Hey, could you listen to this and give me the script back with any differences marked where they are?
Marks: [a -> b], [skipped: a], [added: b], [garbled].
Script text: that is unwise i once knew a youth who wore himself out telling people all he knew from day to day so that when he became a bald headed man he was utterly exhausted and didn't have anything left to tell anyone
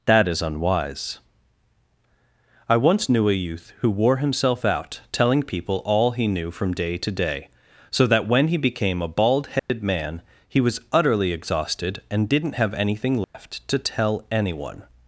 that is unwise i once knew a youth who wore himself out telling people all he knew from day to day so that when he became a bald headed man he was utterly exhausted and didn't have anything left to tell anyone